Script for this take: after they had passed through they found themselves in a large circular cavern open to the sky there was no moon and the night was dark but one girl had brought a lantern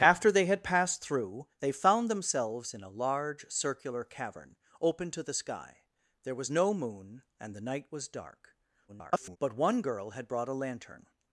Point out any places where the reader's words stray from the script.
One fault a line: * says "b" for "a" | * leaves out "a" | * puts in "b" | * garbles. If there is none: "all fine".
* garbles